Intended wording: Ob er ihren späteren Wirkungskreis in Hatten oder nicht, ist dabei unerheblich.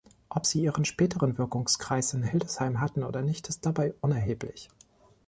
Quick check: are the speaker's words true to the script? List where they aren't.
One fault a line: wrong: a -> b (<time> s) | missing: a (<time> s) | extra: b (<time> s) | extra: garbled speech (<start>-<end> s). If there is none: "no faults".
wrong: er -> sie (0.5 s)
extra: Hildesheim (2.2 s)